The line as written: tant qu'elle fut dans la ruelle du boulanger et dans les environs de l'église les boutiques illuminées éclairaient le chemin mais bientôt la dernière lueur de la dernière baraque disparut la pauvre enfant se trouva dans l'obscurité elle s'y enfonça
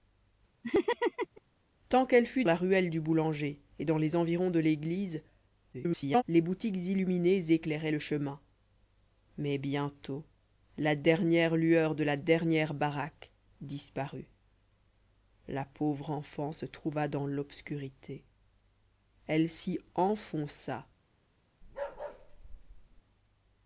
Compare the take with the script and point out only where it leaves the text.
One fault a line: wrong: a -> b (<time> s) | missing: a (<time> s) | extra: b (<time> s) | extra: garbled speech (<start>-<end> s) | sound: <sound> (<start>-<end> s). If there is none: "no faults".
sound: laugh (0.6-1.4 s)
missing: dans (2.4 s)
extra: garbled speech (5.7-6.2 s)
sound: bark (21.6-23.0 s)